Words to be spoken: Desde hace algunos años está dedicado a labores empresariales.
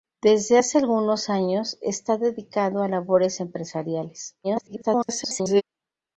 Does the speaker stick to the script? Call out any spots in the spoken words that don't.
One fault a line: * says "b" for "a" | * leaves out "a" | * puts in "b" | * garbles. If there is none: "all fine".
* garbles